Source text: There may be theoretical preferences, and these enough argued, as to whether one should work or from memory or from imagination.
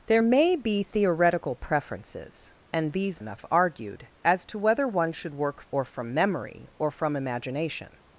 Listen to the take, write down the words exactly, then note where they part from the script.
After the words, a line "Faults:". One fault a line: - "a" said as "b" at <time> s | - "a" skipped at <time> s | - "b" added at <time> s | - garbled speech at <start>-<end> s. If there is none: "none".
There may be theoretical preferences, and these enough argued, as to whether one should work or from memory or from imagination.
Faults:
none